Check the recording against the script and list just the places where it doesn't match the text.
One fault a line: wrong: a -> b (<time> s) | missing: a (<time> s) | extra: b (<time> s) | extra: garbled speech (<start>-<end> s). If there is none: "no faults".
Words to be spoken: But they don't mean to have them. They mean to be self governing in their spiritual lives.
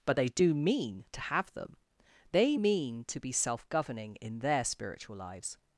wrong: don't -> do (0.3 s)